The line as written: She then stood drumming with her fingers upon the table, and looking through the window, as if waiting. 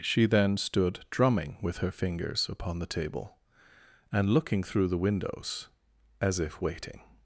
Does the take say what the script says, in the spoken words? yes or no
no